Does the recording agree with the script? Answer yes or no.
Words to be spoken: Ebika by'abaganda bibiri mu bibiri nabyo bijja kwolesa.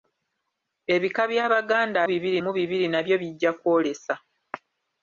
yes